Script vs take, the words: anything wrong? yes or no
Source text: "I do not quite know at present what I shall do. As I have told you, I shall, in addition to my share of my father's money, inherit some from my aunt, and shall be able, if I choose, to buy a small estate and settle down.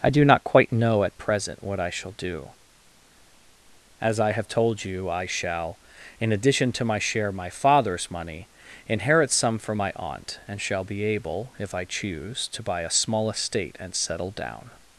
yes